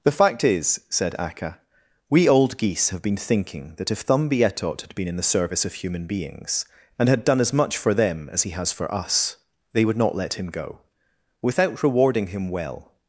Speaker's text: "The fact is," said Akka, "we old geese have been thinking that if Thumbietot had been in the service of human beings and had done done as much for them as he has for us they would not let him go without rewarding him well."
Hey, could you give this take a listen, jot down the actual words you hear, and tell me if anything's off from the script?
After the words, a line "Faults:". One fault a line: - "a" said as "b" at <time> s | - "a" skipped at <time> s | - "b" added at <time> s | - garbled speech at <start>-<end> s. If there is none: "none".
"The fact is," said Akka, "we old geese have been thinking that if Thumbietot had been in the service of human beings and had done as much for them as he has for us they would not let him go without rewarding him well."
Faults:
- "done" skipped at 7.4 s